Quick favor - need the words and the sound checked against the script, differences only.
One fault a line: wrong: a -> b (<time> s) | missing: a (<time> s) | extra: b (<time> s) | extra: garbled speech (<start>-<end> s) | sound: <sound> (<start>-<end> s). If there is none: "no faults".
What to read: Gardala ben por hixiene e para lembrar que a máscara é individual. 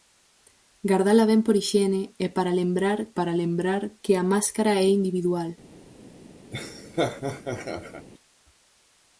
extra: para lembrar (3.2 s)
sound: laugh (6.5-8.1 s)